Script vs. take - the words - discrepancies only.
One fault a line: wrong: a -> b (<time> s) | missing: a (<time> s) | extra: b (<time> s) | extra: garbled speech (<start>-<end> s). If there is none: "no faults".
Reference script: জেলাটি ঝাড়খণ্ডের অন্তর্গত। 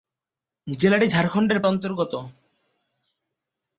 no faults